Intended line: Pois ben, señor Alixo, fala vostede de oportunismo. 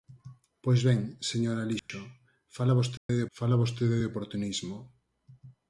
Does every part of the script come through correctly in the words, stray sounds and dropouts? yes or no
no